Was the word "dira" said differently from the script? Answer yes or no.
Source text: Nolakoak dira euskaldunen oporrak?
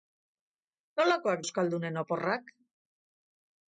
yes